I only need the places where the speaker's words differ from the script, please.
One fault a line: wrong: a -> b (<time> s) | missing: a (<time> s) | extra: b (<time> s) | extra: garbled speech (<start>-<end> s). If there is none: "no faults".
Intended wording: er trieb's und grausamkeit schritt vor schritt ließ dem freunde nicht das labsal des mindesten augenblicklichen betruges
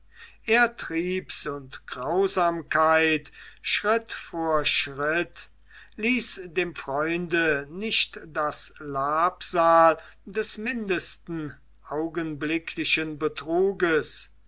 no faults